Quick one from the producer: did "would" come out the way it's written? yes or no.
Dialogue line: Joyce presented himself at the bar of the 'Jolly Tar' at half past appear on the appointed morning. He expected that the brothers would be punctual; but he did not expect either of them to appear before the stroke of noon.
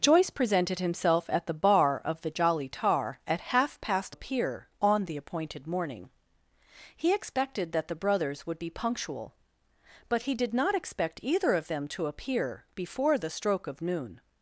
yes